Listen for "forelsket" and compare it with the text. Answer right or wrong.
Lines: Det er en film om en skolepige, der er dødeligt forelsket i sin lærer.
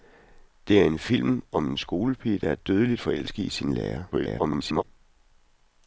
right